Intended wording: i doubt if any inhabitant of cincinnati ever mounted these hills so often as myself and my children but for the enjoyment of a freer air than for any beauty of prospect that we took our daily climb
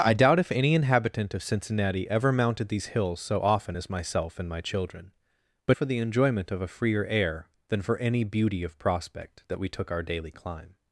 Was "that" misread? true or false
false